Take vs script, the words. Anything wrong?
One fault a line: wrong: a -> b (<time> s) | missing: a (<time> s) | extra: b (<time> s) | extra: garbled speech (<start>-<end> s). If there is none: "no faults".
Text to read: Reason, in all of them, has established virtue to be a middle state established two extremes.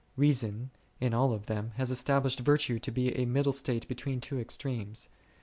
wrong: established -> between (3.9 s)